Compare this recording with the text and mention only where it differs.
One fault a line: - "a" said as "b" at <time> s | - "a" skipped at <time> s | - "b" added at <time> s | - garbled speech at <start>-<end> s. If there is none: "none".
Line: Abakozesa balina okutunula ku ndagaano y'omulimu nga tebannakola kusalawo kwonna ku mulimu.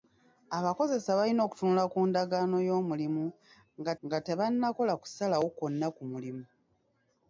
- "nga" added at 4.0 s